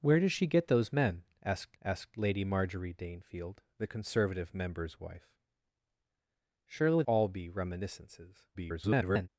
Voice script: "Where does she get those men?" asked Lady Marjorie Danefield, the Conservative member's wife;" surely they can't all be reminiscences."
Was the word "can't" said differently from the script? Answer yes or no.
yes